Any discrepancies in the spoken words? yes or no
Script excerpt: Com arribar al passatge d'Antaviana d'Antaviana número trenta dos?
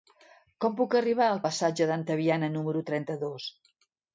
yes